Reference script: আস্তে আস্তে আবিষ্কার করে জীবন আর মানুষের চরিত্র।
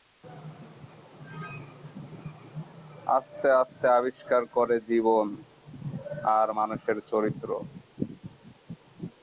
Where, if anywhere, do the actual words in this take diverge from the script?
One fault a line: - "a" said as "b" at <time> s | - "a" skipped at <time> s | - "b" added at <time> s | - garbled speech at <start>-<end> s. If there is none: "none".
none